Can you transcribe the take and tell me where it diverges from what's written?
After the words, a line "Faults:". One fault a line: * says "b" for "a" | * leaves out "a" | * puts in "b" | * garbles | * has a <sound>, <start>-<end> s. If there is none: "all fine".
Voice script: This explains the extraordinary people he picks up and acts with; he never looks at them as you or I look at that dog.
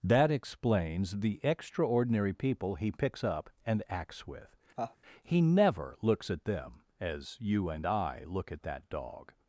That explains the extraordinary people he picks up and acts with; he never looks at them as you and I look at that dog.
Faults:
* says "That" for "This"
* has a laugh, 4.8-5.0 s
* says "and" for "or"